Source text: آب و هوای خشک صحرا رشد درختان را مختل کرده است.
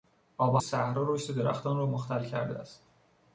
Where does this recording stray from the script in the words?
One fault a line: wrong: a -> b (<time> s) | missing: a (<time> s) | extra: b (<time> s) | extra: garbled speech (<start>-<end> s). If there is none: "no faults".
missing: هوای خشک (0.6 s)